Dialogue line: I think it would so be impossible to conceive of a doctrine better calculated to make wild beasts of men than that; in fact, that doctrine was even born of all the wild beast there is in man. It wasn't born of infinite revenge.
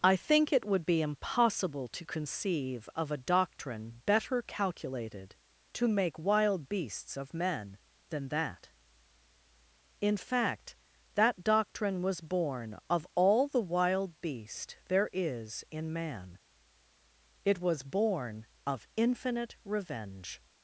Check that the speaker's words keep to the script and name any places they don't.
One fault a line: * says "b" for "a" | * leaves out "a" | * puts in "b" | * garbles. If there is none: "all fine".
* leaves out "so"
* leaves out "even"
* says "was" for "wasn't"